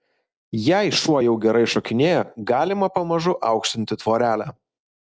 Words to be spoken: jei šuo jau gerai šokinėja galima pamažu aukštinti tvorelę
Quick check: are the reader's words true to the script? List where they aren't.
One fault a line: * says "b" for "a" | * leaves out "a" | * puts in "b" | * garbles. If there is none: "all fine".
all fine